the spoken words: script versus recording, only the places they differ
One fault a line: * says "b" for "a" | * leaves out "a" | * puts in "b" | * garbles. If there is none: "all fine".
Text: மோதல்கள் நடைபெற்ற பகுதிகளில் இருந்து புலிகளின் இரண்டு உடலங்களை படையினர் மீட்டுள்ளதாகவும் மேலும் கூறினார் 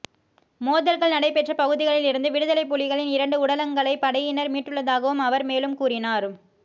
* puts in "விடுதலைப்"
* puts in "அவர்"